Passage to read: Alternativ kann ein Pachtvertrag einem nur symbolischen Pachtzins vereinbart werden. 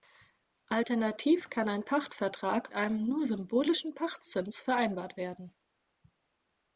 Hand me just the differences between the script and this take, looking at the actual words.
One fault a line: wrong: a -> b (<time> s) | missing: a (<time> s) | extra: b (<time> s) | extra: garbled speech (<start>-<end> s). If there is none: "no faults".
no faults